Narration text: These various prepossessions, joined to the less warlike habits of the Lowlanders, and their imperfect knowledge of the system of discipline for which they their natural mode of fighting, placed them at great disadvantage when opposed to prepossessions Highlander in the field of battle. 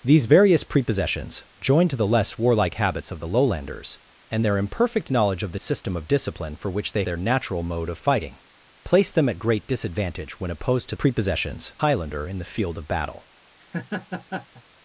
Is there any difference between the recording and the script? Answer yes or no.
no